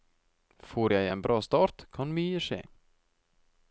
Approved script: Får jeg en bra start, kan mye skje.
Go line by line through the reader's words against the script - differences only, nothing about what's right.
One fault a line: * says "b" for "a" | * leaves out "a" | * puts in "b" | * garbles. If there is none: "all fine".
all fine